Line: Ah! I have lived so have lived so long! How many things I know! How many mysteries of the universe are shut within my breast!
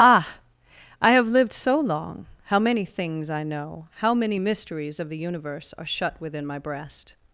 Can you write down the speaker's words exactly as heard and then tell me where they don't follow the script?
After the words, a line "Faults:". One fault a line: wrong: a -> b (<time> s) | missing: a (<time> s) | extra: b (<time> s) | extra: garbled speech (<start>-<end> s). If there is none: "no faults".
Ah! I have lived so long! How many things I know! How many mysteries of the universe are shut within my breast!
Faults:
missing: have lived so (1.8 s)